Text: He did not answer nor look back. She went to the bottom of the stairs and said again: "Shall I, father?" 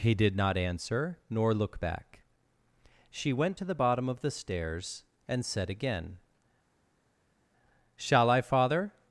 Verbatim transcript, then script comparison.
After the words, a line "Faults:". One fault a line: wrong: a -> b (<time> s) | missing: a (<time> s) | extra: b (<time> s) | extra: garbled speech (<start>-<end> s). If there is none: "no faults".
He did not answer nor look back. She went to the bottom of the stairs and said again: "Shall I, father?"
Faults:
no faults